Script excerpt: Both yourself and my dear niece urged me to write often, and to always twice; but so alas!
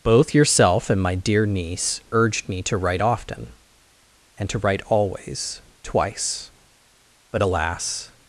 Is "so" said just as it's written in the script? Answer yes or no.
no